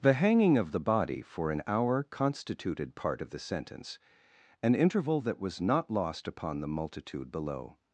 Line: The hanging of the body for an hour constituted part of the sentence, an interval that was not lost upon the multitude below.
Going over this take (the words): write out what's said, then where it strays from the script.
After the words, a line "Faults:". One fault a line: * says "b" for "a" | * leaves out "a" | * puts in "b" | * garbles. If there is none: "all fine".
The hanging of the body for an hour constituted part of the sentence, an interval that was not lost upon the multitude below.
Faults:
all fine